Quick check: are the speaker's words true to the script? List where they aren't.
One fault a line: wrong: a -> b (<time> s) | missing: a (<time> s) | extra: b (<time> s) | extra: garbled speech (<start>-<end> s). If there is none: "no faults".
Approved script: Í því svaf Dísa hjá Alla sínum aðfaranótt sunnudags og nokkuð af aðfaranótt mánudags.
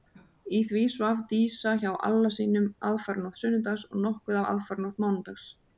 no faults